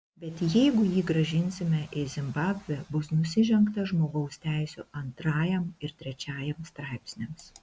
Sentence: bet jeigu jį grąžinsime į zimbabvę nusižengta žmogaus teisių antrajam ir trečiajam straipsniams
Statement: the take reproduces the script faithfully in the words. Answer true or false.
false